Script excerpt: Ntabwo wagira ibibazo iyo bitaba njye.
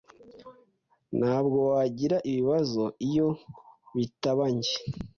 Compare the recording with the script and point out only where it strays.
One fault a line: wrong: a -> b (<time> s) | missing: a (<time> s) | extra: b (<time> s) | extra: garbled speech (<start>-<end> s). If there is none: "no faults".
no faults